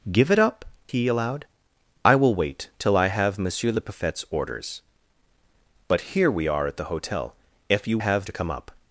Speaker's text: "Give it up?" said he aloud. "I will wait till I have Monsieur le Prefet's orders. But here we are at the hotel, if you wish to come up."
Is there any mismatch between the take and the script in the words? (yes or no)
yes